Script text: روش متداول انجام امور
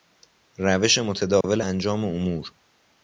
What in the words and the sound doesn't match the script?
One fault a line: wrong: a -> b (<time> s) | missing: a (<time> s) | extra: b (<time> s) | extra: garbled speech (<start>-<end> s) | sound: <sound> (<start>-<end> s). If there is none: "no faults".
sound: dropout (1.4-1.4 s)